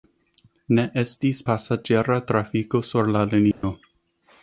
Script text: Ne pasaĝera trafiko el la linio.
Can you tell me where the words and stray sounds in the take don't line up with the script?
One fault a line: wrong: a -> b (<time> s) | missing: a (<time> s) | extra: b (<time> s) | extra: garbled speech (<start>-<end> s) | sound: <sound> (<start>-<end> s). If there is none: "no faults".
extra: estis (1.0 s)
wrong: el -> sur (2.9 s)
sound: dropout (3.5-3.6 s)